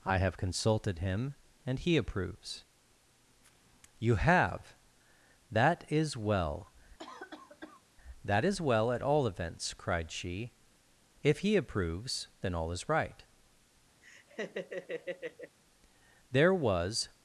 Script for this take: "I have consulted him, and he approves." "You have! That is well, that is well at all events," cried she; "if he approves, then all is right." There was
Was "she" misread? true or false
false